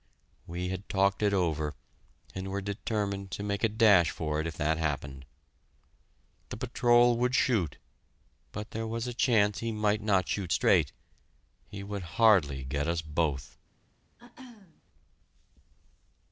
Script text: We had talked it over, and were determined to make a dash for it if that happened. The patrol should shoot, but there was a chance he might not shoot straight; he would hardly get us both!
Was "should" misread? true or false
true